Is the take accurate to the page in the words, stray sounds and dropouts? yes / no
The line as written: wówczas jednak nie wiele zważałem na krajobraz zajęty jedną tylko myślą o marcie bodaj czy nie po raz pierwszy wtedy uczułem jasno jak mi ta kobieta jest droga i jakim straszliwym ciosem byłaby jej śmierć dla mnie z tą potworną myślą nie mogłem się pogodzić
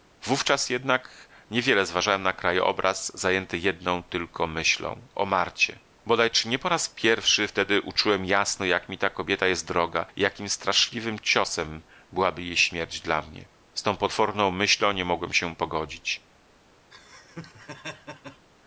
no